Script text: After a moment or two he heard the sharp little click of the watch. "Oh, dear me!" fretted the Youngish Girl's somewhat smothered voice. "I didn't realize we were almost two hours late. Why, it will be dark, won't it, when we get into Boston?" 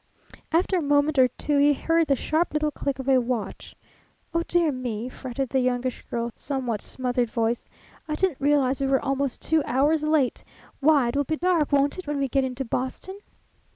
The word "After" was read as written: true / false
true